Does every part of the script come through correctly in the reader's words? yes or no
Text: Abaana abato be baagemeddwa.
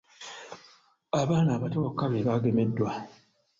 no